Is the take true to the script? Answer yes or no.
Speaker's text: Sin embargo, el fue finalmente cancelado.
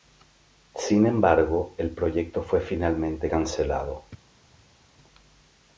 no